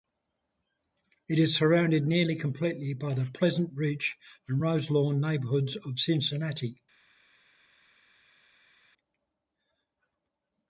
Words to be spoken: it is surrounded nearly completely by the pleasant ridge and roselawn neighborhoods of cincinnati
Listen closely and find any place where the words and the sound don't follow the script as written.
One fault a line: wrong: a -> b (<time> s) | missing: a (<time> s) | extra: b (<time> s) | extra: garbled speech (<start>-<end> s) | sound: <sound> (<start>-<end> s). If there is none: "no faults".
no faults